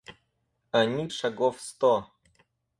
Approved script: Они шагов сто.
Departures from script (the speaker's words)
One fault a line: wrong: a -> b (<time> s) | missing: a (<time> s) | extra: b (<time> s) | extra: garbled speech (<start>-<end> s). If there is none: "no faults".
no faults